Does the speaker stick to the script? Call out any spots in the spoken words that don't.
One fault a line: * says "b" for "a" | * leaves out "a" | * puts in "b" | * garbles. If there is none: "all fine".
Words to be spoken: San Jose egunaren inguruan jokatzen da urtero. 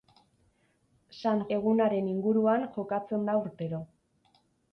* leaves out "Jose"